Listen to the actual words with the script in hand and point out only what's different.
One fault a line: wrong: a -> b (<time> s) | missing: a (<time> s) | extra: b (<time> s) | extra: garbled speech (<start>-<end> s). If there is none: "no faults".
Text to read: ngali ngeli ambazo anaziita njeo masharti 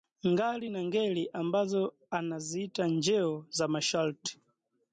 extra: na (0.7 s)
extra: za (3.5 s)